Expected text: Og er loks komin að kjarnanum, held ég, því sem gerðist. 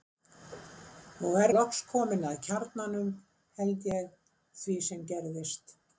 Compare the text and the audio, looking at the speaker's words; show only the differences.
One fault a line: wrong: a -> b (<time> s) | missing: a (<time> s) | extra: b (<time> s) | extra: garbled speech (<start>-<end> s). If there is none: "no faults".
no faults